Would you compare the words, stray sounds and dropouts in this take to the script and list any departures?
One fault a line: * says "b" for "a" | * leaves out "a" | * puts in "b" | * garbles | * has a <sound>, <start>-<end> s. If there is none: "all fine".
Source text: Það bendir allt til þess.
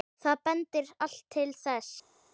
all fine